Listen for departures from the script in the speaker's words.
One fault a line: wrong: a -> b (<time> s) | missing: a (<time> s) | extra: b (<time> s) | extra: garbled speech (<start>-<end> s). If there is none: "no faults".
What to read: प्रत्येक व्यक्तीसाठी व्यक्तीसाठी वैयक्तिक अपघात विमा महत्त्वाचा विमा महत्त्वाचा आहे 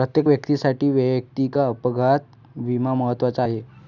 missing: व्यक्तीसाठी (0.9 s)
missing: विमा महत्त्वाचा (3.4 s)